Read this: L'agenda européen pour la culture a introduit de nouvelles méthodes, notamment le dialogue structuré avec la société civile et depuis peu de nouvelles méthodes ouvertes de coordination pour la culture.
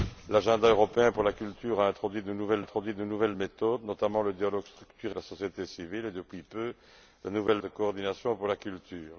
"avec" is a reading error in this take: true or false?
true